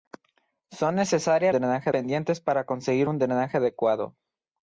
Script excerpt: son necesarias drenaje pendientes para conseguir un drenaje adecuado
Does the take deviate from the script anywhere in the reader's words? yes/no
no